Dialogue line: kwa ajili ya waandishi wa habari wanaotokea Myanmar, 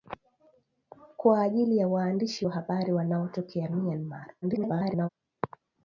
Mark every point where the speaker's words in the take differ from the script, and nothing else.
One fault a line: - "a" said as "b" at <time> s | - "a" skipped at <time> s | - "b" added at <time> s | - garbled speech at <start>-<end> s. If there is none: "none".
- garbled speech at 4.4-5.1 s